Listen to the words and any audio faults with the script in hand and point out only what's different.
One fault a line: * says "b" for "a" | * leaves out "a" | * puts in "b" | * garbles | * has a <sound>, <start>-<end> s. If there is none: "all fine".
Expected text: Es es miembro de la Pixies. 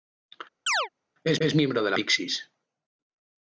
* has a chirp, 0.7-0.9 s